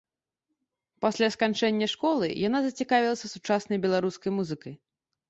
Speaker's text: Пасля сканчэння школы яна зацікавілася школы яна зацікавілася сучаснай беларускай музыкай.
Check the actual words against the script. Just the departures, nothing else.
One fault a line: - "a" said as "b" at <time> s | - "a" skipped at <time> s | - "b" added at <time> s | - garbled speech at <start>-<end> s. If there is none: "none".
- "школы яна зацікавілася" skipped at 3.3 s